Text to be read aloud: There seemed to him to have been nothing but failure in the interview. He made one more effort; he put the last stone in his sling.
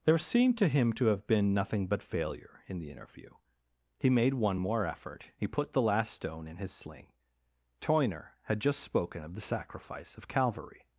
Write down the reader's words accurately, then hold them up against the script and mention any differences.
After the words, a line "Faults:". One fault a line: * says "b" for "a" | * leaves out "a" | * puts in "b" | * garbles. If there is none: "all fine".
There seemed to him to have been nothing but failure in the interview. He made one more effort; he put the last stone in his sling. Toyner had just spoken of the sacrifice of Calvary
Faults:
* puts in "Toyner had just spoken of the sacrifice of Calvary"